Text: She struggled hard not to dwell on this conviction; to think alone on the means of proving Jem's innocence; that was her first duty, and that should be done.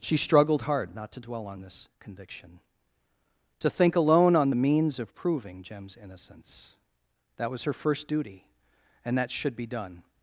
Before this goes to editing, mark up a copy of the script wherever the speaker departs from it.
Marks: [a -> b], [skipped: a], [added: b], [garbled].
She struggled hard not to dwell on this conviction; to think alone on the means of proving Jem's innocence; that was her first duty, and that should be done.